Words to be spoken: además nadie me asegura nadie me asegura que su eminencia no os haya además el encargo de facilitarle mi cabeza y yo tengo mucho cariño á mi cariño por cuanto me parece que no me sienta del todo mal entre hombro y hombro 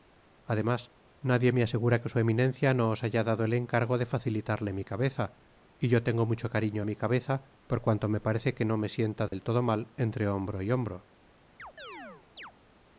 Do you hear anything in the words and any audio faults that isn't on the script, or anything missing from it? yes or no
yes